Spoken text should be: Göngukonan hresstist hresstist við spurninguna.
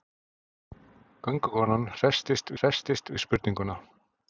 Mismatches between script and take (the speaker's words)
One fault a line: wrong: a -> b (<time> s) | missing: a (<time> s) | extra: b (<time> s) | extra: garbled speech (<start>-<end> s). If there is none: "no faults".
no faults